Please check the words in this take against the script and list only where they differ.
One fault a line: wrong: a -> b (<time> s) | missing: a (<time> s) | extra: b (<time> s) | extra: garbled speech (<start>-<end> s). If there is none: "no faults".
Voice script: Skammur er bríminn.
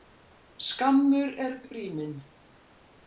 no faults